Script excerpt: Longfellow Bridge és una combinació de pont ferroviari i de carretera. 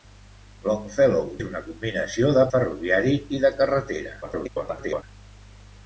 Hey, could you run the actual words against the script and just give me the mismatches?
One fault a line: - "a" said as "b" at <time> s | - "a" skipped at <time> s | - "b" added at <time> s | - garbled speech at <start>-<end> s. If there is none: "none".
- "Bridge" skipped at 1.3 s
- "pont" skipped at 2.5 s
- garbled speech at 4.2-5.0 s